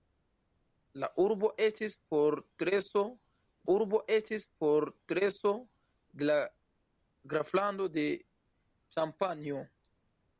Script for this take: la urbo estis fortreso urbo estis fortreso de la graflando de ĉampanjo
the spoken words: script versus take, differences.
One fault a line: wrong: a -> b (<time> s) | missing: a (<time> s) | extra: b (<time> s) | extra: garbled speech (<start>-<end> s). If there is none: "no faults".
no faults